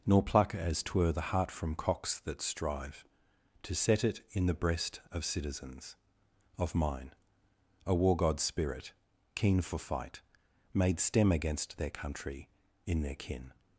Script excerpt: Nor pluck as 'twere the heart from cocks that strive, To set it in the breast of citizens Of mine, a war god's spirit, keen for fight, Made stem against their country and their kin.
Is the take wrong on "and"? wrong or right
wrong